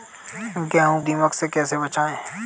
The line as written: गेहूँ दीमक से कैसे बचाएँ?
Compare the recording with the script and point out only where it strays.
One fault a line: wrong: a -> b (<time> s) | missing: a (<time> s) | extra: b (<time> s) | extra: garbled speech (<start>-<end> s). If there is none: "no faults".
no faults